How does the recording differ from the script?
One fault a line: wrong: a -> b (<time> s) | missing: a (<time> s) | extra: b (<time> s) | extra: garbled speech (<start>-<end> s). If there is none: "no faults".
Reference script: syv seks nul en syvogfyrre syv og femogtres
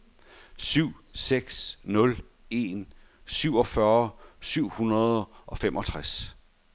extra: hundrede (4.7 s)